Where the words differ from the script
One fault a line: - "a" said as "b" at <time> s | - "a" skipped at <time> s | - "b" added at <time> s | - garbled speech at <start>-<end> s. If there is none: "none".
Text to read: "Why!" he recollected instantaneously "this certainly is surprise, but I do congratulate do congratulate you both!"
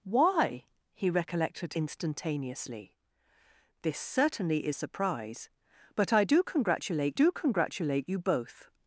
none